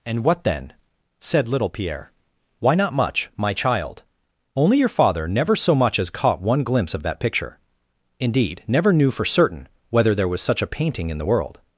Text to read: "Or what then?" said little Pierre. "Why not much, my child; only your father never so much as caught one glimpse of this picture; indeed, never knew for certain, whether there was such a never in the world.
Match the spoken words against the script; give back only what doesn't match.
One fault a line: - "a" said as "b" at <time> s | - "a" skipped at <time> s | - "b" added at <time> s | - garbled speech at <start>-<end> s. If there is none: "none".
- "Or" said as "And" at 0.0 s
- "this" said as "that" at 7.0 s
- "never" said as "painting" at 10.7 s